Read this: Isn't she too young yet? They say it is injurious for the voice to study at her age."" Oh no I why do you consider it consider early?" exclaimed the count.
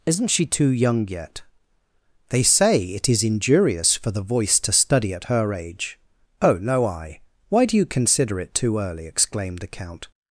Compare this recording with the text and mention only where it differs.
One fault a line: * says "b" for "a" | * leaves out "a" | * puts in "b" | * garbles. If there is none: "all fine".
* says "too" for "consider"